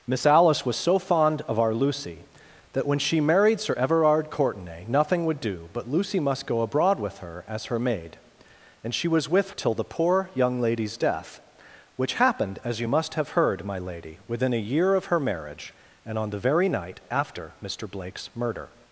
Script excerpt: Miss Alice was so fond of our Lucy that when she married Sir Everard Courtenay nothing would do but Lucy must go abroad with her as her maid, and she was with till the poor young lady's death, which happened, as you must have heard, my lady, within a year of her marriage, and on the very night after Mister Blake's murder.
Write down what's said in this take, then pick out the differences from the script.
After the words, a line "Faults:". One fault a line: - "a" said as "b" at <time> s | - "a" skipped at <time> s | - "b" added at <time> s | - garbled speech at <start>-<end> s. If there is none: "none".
Miss Alice was so fond of our Lucy that when she married Sir Everard Courtenay nothing would do but Lucy must go abroad with her as her maid, and she was with till the poor young lady's death, which happened, as you must have heard, my lady, within a year of her marriage, and on the very night after Mister Blake's murder.
Faults:
none